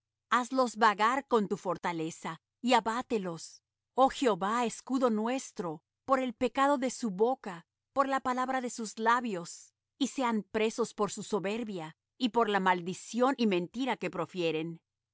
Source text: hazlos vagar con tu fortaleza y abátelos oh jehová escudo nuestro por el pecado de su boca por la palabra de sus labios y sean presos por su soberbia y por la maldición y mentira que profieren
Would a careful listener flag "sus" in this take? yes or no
no